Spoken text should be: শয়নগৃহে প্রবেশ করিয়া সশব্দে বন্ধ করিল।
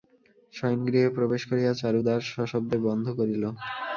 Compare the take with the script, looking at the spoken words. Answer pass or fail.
fail